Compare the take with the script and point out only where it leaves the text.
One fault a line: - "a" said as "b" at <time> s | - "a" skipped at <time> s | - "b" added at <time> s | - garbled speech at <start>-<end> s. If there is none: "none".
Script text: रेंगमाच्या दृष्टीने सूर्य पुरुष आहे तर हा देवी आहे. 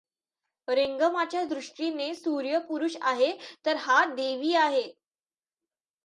none